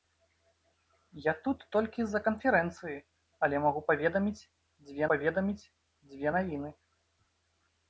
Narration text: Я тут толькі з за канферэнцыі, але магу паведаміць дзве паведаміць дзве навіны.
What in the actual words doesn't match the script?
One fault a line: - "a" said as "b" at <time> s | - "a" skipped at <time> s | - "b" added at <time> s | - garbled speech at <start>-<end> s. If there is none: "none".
none